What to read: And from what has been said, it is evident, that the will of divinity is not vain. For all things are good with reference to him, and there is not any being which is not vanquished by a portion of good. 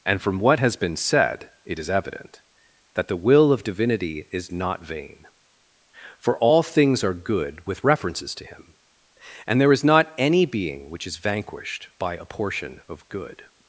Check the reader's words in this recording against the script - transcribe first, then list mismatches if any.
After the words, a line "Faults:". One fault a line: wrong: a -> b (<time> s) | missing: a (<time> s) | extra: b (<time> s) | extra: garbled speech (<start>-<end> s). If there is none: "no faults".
And from what has been said, it is evident, that the will of divinity is not vain. For all things are good with references to him, and there is not any being which is vanquished by a portion of good.
Faults:
wrong: reference -> references (7.8 s)
missing: not (11.2 s)